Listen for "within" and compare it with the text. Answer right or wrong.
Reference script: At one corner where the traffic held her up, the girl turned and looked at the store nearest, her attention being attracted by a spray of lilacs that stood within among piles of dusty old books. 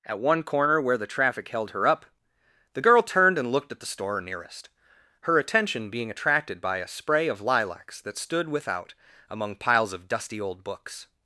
wrong